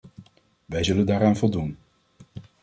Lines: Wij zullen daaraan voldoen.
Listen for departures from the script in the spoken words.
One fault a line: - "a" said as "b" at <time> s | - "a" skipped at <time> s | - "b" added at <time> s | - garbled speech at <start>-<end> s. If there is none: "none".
none